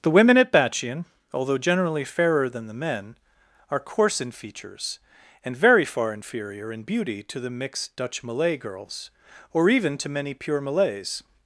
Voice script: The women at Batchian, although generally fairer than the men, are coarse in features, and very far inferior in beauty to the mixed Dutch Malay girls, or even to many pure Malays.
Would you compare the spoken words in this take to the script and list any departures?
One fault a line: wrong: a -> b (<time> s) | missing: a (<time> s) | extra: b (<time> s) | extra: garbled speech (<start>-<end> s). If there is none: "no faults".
no faults